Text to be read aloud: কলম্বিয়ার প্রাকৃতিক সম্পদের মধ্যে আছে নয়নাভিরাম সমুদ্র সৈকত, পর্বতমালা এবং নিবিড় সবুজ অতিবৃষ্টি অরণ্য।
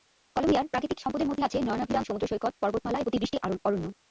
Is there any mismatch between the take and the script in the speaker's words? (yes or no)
yes